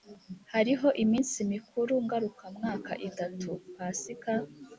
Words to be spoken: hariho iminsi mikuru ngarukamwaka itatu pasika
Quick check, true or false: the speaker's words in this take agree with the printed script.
true